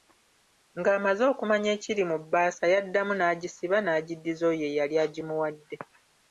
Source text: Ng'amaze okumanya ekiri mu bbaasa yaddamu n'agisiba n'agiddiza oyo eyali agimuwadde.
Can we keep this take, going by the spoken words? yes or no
yes